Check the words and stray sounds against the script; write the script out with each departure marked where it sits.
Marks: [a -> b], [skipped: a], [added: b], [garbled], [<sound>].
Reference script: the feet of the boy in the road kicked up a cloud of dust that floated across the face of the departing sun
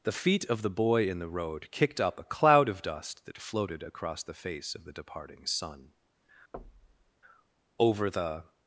the feet of the boy in the road kicked up a cloud of dust that floated across the face of the departing sun [thud] [added: over the]